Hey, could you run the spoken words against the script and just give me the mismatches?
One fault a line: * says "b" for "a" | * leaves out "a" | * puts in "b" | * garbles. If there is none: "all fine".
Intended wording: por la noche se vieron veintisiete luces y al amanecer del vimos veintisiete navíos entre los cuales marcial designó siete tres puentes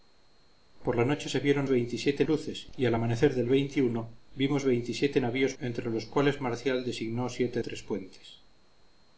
all fine